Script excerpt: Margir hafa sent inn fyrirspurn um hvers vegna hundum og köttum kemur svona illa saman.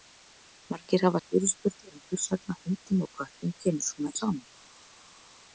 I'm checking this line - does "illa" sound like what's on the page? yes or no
no